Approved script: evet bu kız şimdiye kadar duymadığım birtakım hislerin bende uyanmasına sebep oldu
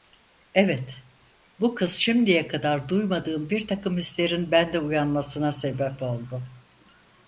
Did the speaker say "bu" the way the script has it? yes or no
yes